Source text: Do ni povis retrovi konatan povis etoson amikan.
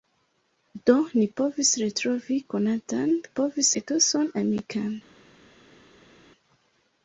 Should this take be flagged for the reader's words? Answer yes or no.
no